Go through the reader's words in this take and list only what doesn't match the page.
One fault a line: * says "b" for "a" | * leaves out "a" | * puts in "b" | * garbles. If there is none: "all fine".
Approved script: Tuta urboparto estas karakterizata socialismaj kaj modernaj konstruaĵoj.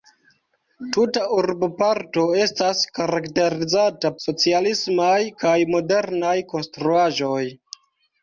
all fine